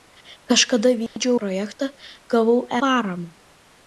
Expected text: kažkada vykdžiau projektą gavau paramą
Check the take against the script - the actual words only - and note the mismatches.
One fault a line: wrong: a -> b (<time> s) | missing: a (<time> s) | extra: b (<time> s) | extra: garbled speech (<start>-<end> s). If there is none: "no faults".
no faults